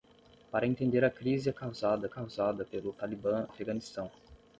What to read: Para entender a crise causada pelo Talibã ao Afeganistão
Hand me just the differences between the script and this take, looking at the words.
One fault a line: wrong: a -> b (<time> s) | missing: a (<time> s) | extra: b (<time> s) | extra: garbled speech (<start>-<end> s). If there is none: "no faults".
extra: causada (2.1 s)
missing: ao (3.5 s)